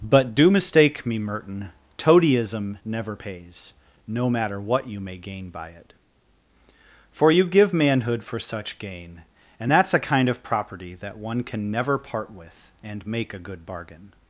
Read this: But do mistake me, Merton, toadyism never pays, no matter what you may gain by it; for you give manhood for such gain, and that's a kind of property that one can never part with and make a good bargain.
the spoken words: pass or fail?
pass